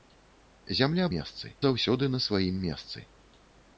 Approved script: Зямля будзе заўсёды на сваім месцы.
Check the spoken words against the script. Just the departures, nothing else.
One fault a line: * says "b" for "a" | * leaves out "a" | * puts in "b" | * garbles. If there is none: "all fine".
* says "месцы" for "будзе"